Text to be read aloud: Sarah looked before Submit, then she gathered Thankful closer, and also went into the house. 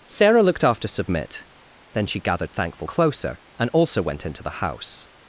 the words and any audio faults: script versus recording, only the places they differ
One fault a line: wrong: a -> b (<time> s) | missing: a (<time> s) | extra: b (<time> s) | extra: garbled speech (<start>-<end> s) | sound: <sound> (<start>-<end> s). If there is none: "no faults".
wrong: before -> after (0.6 s)